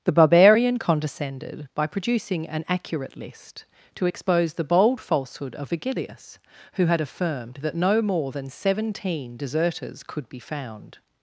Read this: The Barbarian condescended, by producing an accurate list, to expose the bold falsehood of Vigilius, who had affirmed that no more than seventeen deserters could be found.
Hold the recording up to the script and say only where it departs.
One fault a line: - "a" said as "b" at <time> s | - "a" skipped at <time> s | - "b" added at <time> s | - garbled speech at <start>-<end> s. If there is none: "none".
none